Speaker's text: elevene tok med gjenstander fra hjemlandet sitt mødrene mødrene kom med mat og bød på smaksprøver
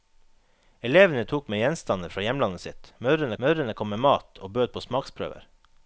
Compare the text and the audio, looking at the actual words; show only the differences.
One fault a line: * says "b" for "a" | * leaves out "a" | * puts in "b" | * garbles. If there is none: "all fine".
all fine